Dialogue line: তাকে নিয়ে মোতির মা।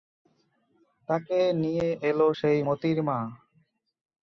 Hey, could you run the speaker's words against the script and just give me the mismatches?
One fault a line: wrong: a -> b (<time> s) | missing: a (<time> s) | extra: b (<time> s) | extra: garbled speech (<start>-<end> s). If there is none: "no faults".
extra: এল সেই (2.1 s)